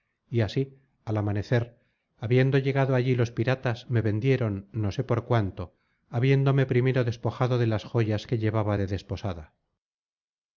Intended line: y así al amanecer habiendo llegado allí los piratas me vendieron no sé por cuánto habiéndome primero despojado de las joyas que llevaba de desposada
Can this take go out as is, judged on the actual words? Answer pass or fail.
pass